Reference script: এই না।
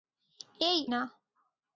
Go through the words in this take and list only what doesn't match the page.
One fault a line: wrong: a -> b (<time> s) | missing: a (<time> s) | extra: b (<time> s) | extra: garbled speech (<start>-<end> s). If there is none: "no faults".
no faults